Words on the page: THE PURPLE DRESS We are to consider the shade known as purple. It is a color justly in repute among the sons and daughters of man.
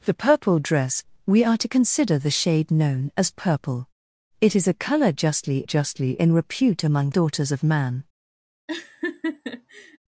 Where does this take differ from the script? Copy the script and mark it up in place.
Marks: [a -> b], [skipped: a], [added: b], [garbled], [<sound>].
THE PURPLE DRESS We are to consider the shade known as purple. It is a color justly [added: justly] in repute among [skipped: the sons and] daughters of man. [laugh]